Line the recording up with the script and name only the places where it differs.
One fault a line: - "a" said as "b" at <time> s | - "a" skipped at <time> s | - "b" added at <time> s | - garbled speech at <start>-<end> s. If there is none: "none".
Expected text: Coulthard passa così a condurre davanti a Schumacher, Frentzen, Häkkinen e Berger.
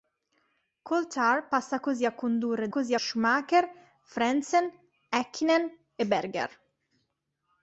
- "davanti" said as "così" at 2.7 s